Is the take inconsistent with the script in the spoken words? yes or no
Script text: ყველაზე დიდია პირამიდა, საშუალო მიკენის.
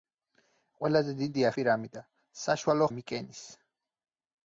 no